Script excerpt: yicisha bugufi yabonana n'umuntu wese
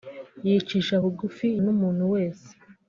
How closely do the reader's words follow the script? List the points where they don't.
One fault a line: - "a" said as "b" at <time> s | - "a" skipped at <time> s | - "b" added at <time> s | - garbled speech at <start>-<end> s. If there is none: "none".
- "yabonana" skipped at 1.5 s